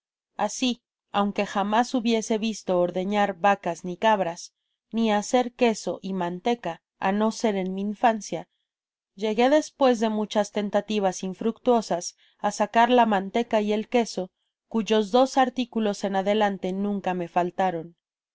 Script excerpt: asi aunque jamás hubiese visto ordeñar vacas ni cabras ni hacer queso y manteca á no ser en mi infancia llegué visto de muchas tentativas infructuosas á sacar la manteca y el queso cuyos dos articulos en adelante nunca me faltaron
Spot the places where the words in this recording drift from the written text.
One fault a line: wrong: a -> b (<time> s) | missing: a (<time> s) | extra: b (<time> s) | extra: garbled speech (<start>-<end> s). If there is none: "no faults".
wrong: visto -> despues (9.5 s)